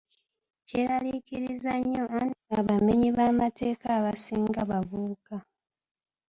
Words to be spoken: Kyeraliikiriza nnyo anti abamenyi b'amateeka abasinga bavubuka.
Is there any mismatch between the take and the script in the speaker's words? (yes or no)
no